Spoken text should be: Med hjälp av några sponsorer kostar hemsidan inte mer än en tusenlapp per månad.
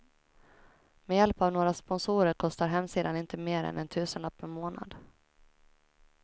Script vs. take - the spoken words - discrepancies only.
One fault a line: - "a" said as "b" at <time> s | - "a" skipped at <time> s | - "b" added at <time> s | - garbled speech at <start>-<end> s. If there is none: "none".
none